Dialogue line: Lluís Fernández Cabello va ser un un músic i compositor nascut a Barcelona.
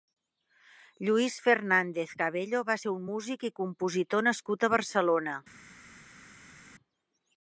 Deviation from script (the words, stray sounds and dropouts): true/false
true